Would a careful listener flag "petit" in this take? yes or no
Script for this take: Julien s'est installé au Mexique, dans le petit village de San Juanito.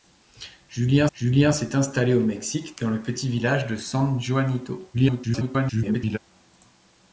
no